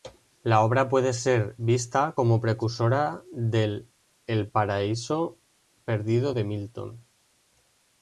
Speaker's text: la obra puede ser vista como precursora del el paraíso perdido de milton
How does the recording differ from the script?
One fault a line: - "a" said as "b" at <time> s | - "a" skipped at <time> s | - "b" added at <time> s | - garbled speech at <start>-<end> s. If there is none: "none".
none